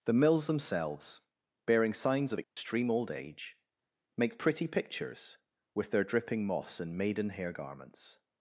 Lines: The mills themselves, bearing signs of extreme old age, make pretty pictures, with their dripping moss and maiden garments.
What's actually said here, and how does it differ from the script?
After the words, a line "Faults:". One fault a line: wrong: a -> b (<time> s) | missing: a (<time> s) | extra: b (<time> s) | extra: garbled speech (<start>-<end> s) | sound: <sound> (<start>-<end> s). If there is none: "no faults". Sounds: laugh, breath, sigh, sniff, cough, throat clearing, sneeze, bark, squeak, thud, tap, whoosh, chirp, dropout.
The mills themselves, bearing signs of extreme old age, make pretty pictures, with their dripping moss and maiden hair garments.
Faults:
sound: dropout (2.4-2.6 s)
extra: hair (7.3 s)